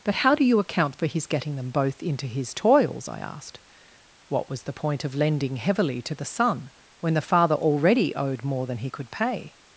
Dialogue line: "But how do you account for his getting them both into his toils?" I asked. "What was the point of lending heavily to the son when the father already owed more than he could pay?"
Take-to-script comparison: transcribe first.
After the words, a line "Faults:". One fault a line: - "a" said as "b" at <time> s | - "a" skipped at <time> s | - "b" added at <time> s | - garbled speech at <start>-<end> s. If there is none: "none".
"But how do you account for his getting them both into his toils?" I asked. "What was the point of lending heavily to the son when the father already owed more than he could pay?"
Faults:
none